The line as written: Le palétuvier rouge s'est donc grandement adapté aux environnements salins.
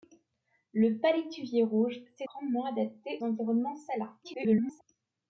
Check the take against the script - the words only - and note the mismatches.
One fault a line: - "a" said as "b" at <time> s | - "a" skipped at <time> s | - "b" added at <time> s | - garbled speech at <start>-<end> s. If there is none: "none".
- "donc" skipped at 2.3 s
- "aux" skipped at 3.2 s
- garbled speech at 4.2-4.8 s